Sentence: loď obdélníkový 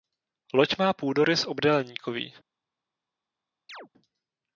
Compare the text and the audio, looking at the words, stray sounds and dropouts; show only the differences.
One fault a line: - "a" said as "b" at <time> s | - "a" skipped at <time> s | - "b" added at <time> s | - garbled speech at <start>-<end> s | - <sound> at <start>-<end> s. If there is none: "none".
- "má půdorys" added at 0.8 s
- chirp at 3.7-3.9 s